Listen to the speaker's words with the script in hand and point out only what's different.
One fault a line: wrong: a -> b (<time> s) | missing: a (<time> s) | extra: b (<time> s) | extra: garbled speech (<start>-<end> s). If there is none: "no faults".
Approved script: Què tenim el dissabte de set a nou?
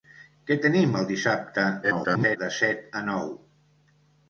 extra: garbled speech (1.8-2.4 s)